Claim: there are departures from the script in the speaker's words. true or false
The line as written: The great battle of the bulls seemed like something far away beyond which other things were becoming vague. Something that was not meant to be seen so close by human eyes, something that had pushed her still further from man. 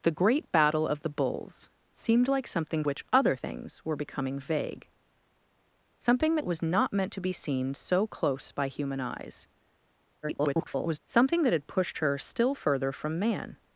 true